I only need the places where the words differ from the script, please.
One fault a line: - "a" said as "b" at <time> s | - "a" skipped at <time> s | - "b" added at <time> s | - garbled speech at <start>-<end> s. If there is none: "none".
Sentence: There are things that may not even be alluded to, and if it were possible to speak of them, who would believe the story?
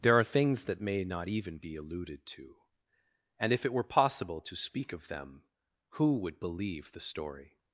none